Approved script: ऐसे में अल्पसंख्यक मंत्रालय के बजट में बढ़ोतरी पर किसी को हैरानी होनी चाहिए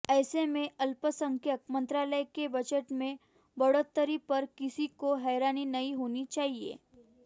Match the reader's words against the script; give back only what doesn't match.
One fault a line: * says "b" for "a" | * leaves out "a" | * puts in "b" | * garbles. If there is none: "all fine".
* puts in "नहीं"